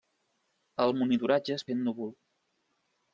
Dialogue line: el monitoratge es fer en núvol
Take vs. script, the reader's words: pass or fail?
pass